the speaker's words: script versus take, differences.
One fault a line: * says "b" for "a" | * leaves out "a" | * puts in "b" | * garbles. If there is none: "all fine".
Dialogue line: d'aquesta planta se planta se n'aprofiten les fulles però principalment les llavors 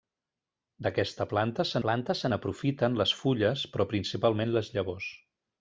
all fine